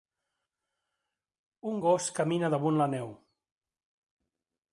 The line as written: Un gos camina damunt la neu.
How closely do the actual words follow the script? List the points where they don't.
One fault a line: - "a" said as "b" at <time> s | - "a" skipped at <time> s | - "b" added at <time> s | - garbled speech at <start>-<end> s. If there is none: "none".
none